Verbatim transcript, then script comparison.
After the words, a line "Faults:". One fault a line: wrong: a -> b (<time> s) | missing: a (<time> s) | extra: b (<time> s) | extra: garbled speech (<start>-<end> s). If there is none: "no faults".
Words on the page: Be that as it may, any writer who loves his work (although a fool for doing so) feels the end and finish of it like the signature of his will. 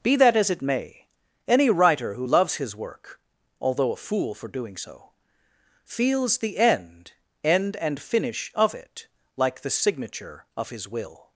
Be that as it may, any writer who loves his work (although a fool for doing so) feels the end end and finish of it like the signature of his will.
Faults:
extra: end (7.4 s)